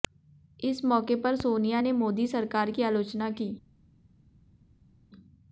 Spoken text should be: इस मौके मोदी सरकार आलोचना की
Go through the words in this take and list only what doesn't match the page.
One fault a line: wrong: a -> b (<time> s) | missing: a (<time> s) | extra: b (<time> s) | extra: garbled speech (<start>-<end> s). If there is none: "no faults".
extra: पर सोनिया ने (1.2 s)
extra: की (2.7 s)